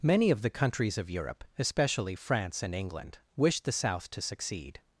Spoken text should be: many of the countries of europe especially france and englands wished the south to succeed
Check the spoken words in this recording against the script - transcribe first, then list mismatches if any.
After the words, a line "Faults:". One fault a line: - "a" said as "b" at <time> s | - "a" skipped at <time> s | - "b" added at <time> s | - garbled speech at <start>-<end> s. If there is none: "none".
many of the countries of europe especially france and england wished the south to succeed
Faults:
- "englands" said as "england" at 2.7 s